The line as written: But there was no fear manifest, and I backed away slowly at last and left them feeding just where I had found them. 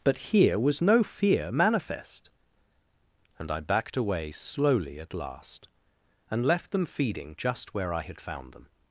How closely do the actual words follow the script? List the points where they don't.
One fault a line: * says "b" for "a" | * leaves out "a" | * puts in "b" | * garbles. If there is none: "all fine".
* says "here" for "there"